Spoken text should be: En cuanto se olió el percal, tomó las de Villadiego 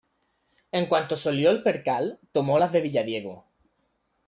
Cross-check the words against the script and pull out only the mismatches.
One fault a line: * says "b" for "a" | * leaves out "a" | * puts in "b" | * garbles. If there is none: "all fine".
all fine